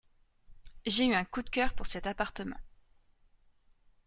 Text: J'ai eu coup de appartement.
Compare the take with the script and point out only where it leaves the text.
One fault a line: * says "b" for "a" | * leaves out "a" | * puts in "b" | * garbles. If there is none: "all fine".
* puts in "un"
* puts in "cœur pour cet"